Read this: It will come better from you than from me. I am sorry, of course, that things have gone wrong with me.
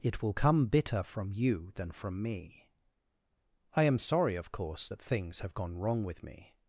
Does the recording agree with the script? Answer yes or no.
no